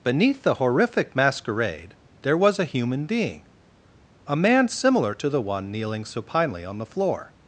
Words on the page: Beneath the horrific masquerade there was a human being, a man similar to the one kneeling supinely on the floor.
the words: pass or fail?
pass